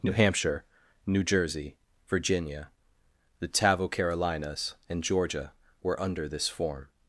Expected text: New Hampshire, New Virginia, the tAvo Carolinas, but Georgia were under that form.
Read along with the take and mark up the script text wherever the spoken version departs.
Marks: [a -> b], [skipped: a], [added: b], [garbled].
New Hampshire, New [added: Jersey] Virginia, the tAvo Carolinas, [but -> and] Georgia were under [that -> this] form.